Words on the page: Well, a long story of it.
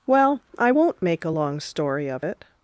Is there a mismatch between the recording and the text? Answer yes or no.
yes